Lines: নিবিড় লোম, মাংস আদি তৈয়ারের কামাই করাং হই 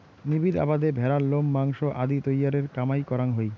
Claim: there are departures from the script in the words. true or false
true